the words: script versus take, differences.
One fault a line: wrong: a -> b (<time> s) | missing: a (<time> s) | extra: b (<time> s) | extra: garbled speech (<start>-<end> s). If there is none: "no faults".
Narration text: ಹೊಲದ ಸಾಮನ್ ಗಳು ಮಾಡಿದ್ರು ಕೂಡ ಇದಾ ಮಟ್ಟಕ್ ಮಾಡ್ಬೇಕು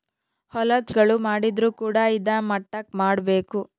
missing: ಸಾಮನ್ (0.9 s)